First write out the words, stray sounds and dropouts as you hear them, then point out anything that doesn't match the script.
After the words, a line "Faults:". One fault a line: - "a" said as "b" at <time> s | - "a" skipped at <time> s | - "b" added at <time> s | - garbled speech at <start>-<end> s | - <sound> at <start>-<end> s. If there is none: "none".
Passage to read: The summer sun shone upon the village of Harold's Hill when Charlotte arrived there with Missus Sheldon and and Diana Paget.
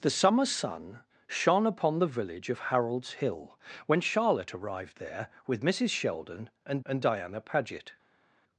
The summer sun shone upon the village of Harold's Hill when Charlotte arrived there with Missus Sheldon and and Diana Paget.
Faults:
none